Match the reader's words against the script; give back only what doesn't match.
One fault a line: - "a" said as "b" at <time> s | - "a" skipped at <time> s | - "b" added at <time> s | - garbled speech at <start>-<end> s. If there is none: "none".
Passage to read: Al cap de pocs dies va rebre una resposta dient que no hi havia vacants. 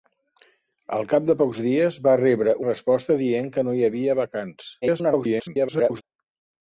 - "una" skipped at 2.6 s
- garbled speech at 4.8-6.0 s